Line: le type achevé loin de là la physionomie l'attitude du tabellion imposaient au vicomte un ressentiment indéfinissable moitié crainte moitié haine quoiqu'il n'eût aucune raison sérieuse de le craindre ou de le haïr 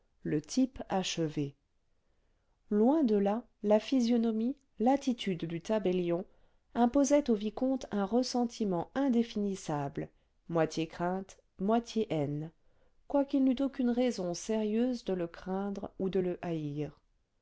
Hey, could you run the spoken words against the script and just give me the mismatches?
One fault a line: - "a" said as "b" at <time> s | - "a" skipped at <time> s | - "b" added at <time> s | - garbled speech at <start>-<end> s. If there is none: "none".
none